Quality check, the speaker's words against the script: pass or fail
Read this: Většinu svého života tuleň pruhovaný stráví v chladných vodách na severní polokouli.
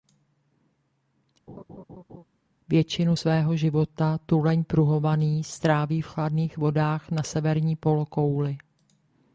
pass